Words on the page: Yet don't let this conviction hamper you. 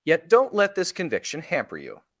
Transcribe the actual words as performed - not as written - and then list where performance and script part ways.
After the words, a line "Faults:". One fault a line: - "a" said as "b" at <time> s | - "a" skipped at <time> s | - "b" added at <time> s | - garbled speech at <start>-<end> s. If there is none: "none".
Yet don't let this conviction hamper you.
Faults:
none